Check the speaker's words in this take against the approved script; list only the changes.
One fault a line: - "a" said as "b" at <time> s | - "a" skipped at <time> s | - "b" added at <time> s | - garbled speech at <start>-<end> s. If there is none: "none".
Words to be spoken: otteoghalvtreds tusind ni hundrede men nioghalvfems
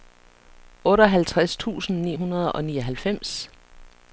- "men" said as "og" at 2.5 s